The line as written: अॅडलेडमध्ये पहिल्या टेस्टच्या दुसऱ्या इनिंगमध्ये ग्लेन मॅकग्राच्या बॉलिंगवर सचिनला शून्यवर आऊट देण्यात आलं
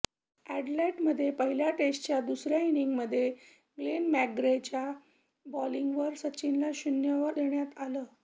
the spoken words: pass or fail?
fail